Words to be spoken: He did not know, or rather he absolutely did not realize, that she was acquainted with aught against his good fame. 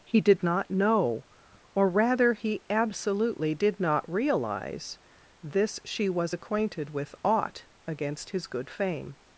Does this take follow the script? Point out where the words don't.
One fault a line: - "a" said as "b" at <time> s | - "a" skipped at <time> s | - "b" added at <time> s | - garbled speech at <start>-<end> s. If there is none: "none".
- "that" said as "this" at 5.4 s